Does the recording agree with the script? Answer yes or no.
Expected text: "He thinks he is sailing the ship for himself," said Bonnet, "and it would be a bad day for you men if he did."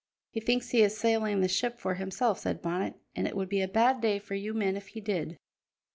yes